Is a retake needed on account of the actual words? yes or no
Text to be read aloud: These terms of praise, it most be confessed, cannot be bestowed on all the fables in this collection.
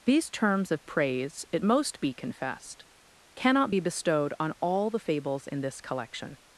no